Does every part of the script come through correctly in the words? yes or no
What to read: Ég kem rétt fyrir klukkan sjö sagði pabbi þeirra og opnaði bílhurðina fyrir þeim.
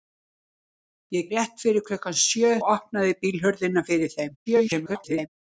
no